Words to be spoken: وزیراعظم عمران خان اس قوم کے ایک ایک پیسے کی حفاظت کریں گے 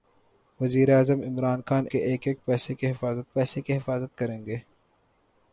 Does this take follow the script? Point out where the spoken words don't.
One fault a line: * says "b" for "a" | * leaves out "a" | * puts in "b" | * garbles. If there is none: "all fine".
* leaves out "اس قوم"
* puts in "پیسے کی حفاظت"